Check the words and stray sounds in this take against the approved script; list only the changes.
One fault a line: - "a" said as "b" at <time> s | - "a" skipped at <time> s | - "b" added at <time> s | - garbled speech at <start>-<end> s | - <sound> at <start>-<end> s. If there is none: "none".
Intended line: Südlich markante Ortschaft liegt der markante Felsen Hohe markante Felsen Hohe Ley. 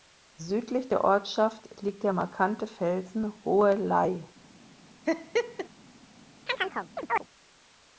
- "markante" said as "der" at 0.9 s
- "markante Felsen Hohe" skipped at 3.7 s
- laugh at 5.1-5.7 s
- chirp at 6.5-7.2 s